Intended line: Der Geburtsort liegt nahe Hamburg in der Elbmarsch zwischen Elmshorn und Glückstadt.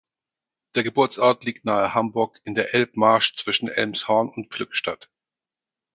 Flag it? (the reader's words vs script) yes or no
no